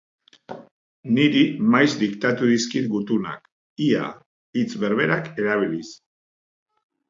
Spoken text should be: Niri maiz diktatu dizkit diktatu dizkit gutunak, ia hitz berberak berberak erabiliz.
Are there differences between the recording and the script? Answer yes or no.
yes